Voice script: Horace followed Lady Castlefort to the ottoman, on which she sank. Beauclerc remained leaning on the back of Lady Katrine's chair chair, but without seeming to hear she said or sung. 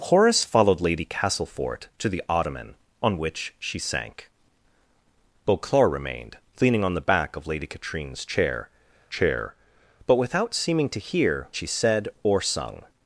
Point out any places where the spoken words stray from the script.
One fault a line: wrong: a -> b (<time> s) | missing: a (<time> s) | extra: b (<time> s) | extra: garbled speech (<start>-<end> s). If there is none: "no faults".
no faults